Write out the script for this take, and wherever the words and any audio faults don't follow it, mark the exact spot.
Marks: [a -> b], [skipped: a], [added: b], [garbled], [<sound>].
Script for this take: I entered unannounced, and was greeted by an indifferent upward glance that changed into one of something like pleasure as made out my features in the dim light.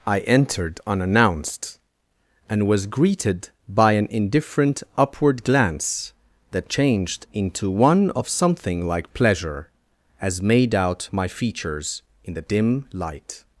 I entered unannounced, and was greeted by an indifferent upward glance that changed into one of something like pleasure as made out my features in the dim light.